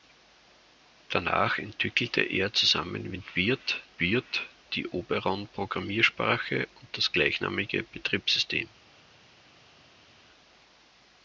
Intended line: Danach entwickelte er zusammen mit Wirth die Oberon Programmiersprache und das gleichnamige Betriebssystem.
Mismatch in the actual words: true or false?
true